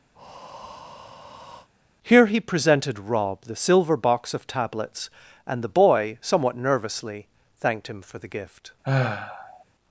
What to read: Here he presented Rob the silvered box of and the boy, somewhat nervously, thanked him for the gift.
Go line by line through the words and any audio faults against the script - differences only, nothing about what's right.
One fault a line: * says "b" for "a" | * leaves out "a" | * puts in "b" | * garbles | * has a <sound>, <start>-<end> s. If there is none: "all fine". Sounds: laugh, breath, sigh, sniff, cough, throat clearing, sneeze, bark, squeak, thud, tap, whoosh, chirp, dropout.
* has a breath, 0.1-1.7 s
* says "silver" for "silvered"
* puts in "tablets"
* has a sigh, 8.8-9.6 s